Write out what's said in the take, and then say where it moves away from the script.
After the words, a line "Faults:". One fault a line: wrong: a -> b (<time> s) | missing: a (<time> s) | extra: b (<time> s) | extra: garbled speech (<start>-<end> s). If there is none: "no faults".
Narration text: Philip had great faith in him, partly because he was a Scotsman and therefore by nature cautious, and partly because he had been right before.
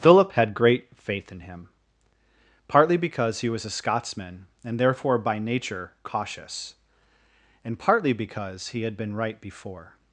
Philip had great faith in him, partly because he was a Scotsman and therefore by nature cautious, and partly because he had been right before.
Faults:
no faults